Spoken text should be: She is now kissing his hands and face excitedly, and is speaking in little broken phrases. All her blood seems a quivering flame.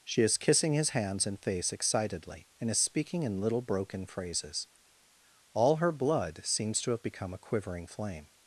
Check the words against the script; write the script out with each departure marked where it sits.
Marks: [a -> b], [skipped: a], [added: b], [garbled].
She is [skipped: now] kissing his hands and face excitedly, and is speaking in little broken phrases. All her blood seems [added: to have become] a quivering flame.